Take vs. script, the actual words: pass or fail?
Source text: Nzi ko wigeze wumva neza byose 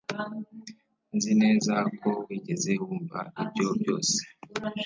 fail